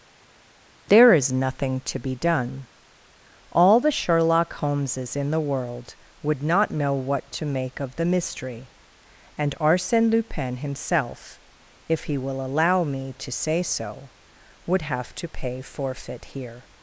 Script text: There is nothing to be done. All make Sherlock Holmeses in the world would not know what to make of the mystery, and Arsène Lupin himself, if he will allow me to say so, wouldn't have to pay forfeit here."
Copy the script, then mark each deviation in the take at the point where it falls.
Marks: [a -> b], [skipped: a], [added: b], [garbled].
There is nothing to be done. All [make -> the] Sherlock Holmeses in the world would not know what to make of the mystery, and Arsène Lupin himself, if he will allow me to say so, [wouldn't -> would] have to pay forfeit here."